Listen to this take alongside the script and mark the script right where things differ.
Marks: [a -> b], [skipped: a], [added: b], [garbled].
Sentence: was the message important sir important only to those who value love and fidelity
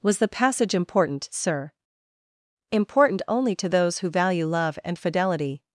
was the [message -> passage] important sir important only to those who value love and fidelity